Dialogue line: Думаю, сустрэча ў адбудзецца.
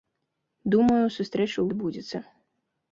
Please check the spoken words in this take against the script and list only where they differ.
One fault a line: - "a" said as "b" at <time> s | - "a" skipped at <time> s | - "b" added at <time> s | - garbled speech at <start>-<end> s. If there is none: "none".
none